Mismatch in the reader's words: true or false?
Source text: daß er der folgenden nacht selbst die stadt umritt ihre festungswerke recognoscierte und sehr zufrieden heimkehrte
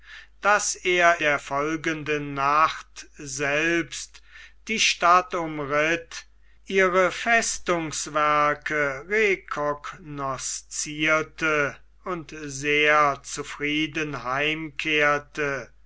false